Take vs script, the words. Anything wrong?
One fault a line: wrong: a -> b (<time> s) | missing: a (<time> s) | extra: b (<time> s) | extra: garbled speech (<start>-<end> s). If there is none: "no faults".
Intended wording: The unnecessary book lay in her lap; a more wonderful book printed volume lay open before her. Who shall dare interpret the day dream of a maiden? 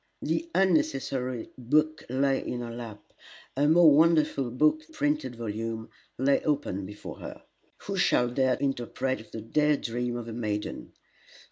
no faults